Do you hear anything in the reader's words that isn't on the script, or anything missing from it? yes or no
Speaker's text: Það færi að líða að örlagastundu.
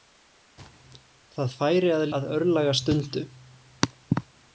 yes